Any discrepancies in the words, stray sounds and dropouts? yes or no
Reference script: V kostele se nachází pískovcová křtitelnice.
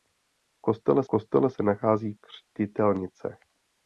yes